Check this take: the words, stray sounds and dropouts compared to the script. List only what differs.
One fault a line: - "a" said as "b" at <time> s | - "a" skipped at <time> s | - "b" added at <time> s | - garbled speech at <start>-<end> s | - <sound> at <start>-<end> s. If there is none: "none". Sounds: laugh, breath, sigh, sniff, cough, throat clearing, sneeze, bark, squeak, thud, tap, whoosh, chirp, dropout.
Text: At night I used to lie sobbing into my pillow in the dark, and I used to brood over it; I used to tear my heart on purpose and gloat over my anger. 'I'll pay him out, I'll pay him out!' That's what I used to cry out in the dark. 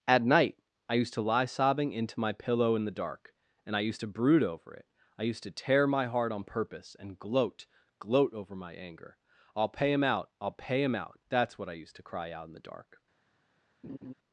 - "gloat" added at 8.0 s
- laugh at 13.8-14.1 s